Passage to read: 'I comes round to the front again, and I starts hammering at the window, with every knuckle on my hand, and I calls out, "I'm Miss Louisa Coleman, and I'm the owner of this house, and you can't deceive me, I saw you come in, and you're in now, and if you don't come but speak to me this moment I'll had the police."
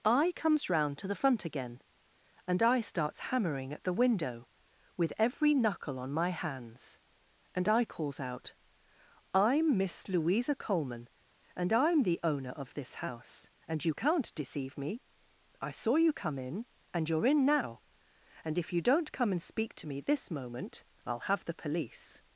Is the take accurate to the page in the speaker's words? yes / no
no